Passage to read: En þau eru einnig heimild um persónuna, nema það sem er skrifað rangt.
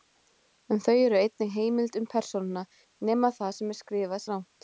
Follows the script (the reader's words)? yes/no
yes